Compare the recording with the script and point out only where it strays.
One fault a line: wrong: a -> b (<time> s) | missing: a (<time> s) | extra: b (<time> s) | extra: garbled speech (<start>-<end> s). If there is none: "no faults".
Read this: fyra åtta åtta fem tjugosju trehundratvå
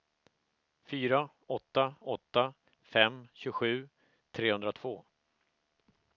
no faults